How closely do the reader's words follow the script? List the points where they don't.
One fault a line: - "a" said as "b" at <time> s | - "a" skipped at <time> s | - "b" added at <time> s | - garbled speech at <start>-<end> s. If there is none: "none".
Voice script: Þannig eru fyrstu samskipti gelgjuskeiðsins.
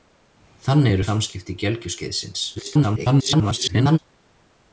- "fyrstu" skipped at 1.1 s
- garbled speech at 2.6-4.0 s